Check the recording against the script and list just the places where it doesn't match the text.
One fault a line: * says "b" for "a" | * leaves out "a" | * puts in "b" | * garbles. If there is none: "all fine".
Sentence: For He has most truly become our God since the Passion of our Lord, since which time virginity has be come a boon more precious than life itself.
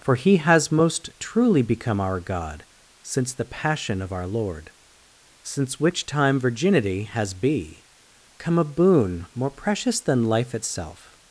all fine